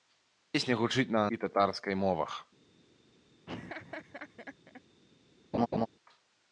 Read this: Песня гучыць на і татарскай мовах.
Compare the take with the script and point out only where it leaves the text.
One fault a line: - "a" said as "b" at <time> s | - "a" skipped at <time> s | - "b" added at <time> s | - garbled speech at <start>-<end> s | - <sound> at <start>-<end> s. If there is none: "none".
- laugh at 3.5-4.8 s
- laugh at 5.5-5.9 s